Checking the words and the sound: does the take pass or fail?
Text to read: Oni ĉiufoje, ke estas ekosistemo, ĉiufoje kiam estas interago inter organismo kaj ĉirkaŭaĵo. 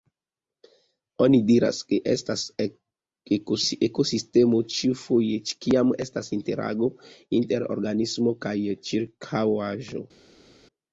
fail